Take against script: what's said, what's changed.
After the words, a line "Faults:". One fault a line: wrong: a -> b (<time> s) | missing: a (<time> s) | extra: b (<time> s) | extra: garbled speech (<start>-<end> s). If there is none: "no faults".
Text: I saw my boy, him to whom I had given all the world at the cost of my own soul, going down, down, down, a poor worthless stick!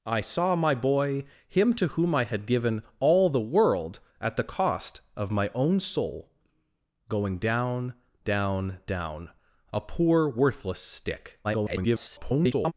I saw my boy, him to whom I had given all the world at the cost of my own soul, going down, down, down, a poor worthless stick! [garbled]
Faults:
extra: garbled speech (11.4-12.7 s)